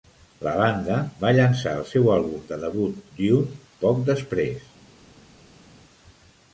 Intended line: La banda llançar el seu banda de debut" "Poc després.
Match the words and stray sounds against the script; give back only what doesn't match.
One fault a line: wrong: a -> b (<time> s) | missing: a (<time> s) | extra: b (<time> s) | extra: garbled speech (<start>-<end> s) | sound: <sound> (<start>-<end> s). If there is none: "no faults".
extra: va (1.2 s)
wrong: banda -> àlbum (2.1 s)
extra: Dune (3.2 s)